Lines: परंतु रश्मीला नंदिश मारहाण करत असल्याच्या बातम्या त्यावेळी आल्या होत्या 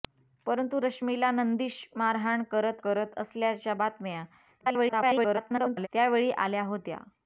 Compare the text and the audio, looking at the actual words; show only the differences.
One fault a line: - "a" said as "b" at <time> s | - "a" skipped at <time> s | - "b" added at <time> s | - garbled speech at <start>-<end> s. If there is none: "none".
- "करत" added at 2.8 s
- garbled speech at 4.6-5.9 s